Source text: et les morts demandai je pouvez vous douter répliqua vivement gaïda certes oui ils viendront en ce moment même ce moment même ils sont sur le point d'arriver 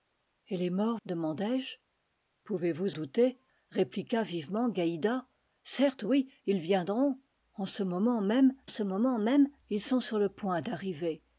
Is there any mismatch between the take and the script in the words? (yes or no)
no